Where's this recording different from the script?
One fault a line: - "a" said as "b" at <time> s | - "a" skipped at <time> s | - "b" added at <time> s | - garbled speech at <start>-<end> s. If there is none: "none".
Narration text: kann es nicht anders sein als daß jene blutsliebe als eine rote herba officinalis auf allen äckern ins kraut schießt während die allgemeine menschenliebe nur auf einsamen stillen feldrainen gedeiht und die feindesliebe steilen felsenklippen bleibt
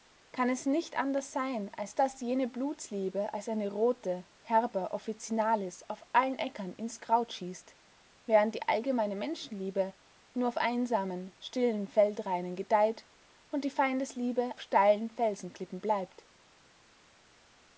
none